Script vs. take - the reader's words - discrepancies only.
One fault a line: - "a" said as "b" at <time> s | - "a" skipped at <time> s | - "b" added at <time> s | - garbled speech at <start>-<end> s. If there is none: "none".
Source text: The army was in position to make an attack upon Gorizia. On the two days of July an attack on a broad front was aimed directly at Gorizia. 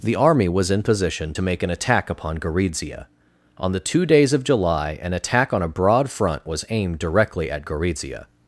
none